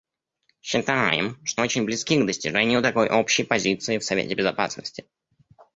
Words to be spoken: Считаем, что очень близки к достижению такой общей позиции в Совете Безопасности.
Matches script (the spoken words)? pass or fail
pass